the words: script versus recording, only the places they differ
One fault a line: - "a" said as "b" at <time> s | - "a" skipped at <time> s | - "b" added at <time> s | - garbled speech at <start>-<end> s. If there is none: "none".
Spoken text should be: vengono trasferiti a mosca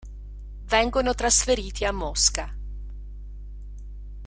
none